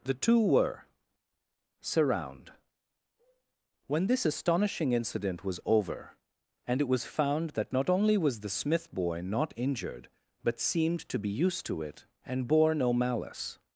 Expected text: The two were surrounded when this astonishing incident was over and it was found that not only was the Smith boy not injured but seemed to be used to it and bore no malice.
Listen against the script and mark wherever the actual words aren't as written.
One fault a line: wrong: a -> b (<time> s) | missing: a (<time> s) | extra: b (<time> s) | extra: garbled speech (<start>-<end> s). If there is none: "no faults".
wrong: surrounded -> surround (1.8 s)